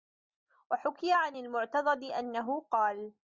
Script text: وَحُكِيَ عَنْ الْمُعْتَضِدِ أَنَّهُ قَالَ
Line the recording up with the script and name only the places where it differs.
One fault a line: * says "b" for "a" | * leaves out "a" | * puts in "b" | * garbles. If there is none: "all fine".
all fine